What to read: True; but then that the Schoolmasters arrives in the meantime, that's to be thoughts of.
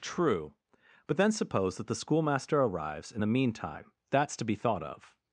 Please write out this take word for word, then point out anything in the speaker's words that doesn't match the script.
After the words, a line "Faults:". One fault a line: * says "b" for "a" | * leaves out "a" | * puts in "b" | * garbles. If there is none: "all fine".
True; but then suppose that the Schoolmaster arrives in the meantime, that's to be thought of.
Faults:
* puts in "suppose"
* says "Schoolmaster" for "Schoolmasters"
* says "thought" for "thoughts"